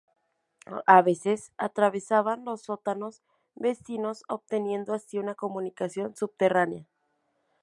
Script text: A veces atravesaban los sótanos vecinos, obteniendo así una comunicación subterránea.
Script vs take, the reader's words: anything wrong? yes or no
no